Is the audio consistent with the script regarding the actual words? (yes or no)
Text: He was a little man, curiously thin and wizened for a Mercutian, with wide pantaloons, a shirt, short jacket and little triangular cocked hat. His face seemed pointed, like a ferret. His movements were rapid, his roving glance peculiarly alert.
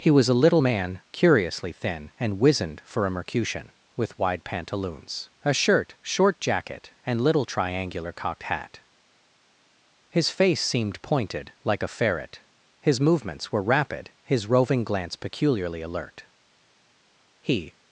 no